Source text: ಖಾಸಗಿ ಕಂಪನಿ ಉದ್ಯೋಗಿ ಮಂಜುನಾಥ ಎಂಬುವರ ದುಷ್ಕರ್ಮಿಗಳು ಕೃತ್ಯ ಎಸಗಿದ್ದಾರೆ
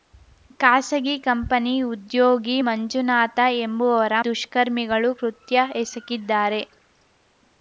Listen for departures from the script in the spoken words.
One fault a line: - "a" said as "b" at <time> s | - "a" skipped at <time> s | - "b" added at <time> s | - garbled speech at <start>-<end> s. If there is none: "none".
none